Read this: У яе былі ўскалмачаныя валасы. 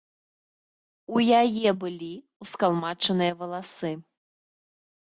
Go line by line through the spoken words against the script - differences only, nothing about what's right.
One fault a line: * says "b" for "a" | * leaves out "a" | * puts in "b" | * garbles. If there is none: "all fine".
all fine